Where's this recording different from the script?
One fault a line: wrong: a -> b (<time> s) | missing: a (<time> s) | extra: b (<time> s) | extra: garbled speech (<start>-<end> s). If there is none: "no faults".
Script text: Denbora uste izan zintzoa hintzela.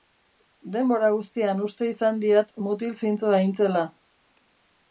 extra: guztian (1.1 s)
extra: diat mutil (2.2 s)